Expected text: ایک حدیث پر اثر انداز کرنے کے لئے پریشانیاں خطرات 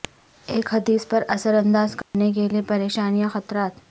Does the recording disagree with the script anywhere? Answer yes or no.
no